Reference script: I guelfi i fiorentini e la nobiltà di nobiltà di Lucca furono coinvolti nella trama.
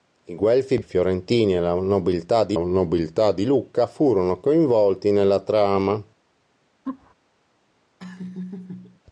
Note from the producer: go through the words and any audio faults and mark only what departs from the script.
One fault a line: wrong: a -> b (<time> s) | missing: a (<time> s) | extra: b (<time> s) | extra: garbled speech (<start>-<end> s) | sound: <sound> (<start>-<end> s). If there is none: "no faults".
sound: laugh (6.9-7.1 s)
sound: laugh (8.0-9.0 s)